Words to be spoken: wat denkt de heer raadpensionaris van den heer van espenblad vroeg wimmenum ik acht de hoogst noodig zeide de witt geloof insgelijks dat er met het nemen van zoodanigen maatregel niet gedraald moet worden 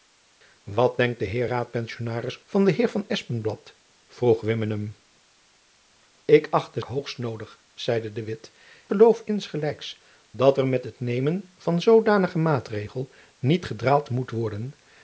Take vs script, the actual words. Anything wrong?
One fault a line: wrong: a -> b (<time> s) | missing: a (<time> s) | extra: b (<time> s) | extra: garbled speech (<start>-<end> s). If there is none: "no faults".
no faults